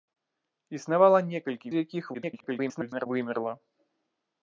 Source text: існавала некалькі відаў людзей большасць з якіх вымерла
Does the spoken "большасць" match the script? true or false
false